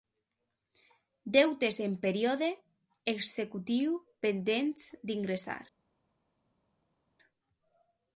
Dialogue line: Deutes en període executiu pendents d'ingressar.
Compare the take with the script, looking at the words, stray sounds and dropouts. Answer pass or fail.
pass